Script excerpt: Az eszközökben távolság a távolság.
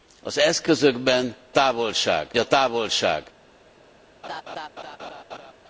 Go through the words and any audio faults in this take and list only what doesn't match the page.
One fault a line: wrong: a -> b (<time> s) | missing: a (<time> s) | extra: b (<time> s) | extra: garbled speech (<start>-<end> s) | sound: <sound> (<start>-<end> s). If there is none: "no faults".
sound: laugh (4.2-5.5 s)